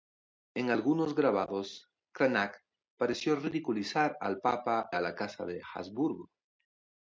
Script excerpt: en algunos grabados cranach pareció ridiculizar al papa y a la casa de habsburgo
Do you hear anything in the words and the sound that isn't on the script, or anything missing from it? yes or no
yes